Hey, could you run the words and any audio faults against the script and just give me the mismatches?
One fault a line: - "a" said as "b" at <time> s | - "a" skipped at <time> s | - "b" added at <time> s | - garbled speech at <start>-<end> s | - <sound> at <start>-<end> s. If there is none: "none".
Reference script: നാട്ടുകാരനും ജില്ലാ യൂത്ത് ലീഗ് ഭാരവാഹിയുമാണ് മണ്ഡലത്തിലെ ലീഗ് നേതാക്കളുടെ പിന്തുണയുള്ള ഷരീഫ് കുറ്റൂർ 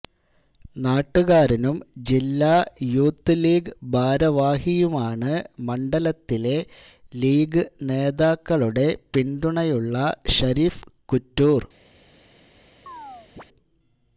- chirp at 12.9-13.4 s